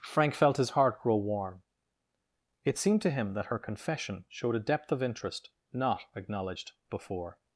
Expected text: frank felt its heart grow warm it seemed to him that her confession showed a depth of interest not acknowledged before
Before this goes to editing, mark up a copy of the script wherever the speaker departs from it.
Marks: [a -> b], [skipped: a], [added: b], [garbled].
frank felt [its -> his] heart grow warm it seemed to him that her confession showed a depth of interest not acknowledged before